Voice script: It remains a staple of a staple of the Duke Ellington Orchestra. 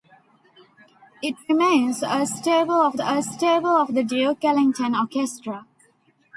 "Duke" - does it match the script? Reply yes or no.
yes